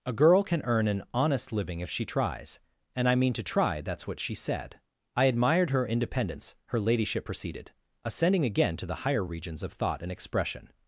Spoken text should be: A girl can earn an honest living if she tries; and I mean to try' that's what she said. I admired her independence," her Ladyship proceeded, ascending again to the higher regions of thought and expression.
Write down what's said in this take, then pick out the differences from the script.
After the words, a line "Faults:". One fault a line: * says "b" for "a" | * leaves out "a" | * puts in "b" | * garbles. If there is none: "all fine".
A girl can earn an honest living if she tries; and I mean to try' that's what she said. I admired her independence," her Ladyship proceeded, ascending again to the higher regions of thought and expression.
Faults:
all fine